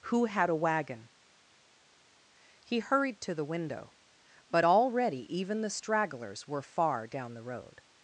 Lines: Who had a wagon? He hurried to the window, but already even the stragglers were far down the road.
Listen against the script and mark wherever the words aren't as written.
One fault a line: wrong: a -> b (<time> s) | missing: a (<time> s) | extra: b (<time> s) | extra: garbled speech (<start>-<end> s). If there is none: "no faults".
no faults